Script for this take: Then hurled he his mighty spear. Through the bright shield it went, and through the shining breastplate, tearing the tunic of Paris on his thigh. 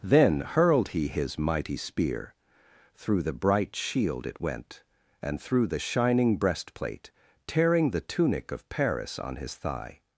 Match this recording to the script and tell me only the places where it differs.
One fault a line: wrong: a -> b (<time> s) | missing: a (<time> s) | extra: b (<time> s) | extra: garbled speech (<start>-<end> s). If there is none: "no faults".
no faults